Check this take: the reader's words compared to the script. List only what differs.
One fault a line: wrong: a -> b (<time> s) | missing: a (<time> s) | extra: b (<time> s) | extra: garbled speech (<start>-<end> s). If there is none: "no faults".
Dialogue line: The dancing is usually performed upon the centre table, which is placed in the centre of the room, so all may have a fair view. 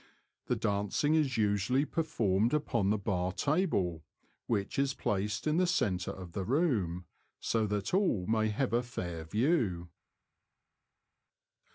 wrong: centre -> bar (3.0 s)
extra: that (7.7 s)